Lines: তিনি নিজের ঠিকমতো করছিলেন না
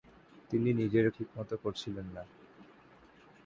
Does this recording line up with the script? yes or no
yes